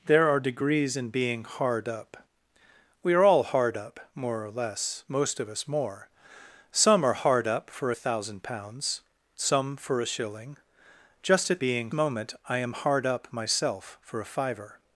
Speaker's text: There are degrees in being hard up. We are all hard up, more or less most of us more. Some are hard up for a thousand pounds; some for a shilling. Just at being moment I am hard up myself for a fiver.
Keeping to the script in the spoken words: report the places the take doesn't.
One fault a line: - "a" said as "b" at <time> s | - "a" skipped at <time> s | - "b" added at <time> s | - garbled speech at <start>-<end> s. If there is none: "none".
none